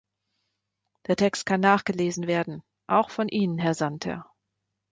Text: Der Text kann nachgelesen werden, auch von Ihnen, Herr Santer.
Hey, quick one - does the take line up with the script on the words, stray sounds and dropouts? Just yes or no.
yes